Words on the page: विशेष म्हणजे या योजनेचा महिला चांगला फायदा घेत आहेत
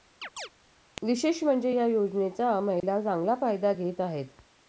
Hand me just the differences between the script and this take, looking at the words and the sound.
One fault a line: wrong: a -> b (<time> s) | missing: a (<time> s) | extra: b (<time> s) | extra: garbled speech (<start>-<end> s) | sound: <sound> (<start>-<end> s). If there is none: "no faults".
sound: chirp (0.2-0.5 s)
sound: dropout (2.8-2.8 s)